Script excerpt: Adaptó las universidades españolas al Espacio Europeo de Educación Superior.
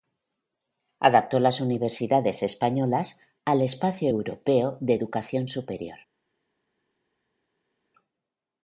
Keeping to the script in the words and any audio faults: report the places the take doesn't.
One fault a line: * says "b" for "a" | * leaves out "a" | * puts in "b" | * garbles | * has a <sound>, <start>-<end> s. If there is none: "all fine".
all fine